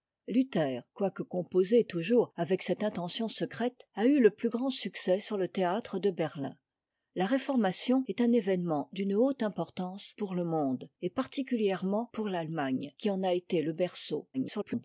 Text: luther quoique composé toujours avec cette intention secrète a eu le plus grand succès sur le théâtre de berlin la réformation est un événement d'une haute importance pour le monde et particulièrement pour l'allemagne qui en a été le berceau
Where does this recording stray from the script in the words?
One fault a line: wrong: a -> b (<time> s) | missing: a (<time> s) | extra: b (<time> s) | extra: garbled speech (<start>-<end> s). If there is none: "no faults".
extra: garbled speech (14.3-14.8 s)